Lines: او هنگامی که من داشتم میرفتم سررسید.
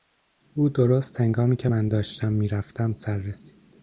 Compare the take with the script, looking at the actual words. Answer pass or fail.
fail